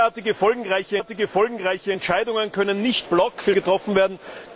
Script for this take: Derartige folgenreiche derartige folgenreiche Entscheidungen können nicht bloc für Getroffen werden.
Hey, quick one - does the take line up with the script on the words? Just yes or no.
yes